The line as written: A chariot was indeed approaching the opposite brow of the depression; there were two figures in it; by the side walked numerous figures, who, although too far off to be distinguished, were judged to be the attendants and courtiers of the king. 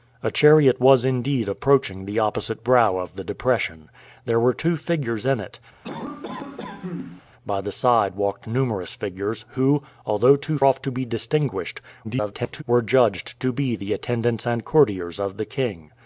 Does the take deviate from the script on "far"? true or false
true